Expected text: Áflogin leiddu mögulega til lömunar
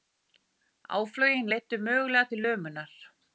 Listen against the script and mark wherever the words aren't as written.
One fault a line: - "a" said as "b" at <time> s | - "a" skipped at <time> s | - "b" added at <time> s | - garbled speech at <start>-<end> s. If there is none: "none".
none